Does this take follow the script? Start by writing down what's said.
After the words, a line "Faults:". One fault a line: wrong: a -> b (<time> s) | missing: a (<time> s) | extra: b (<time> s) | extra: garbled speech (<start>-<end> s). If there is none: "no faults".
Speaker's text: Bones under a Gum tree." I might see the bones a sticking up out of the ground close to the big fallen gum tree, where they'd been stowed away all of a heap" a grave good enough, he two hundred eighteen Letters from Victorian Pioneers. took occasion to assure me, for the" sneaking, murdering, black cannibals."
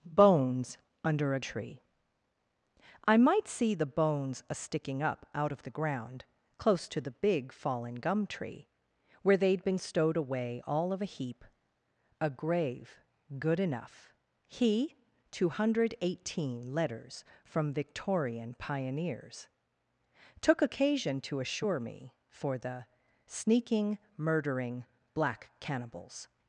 Bones under a Tree." I might see the bones a sticking up out of the ground close to the big fallen gum tree, where they'd been stowed away all of a heap" a grave good enough, he two hundred eighteen Letters from Victorian Pioneers. took occasion to assure me, for the" sneaking, murdering, black cannibals."
Faults:
missing: Gum (1.4 s)